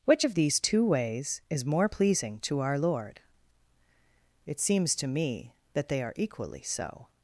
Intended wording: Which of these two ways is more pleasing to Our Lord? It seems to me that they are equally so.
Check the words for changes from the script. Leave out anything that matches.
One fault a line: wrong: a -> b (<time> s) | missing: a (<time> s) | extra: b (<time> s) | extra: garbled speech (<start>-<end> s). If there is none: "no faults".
no faults